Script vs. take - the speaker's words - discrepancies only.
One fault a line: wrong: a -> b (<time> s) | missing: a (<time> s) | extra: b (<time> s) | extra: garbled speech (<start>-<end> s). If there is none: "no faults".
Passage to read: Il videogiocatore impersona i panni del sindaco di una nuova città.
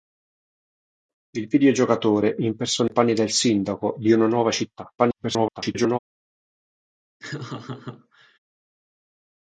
extra: garbled speech (5.0-6.0 s)